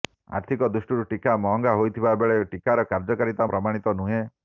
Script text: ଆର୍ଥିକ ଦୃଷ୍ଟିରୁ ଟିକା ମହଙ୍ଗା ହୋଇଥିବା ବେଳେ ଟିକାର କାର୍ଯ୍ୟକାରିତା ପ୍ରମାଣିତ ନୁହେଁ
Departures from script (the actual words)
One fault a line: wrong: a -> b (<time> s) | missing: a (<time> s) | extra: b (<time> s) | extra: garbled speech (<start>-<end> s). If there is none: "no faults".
no faults